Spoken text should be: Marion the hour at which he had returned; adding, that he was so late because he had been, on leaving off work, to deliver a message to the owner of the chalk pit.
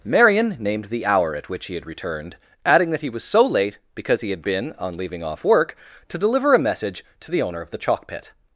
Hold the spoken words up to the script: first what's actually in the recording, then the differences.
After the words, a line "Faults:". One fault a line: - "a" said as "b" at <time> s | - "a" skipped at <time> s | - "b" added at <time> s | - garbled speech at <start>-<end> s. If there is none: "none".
Marion named the hour at which he had returned; adding, that he was so late because he had been, on leaving off work, to deliver a message to the owner of the chalk pit.
Faults:
- "named" added at 0.6 s